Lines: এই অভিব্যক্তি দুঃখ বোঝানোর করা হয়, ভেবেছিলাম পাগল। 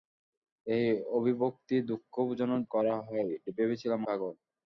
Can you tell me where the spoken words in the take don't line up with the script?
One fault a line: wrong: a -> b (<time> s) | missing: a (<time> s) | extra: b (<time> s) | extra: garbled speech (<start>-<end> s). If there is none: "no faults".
no faults